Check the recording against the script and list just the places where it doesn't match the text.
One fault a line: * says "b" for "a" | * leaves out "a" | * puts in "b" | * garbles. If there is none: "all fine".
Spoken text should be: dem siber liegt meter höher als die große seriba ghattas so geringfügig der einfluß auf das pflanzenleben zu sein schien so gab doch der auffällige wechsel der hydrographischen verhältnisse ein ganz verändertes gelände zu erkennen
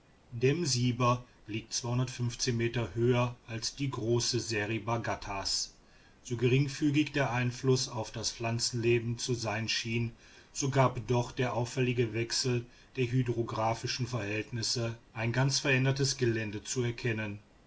all fine